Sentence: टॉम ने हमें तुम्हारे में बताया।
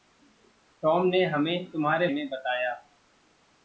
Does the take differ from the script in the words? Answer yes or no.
no